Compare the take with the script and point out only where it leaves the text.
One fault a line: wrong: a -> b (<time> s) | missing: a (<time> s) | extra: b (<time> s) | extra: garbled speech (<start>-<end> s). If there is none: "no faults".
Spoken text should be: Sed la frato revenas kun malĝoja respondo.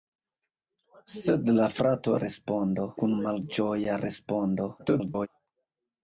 wrong: revenas -> respondo (2.2 s)
extra: garbled speech (4.8-5.3 s)